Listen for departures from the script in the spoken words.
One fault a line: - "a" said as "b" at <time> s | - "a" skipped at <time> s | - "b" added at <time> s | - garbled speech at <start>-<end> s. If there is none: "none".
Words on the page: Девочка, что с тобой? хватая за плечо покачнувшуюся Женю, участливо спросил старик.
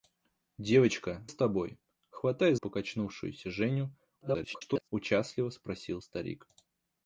- "что" skipped at 1.3 s
- "за плечо" skipped at 2.6 s
- garbled speech at 4.2-4.9 s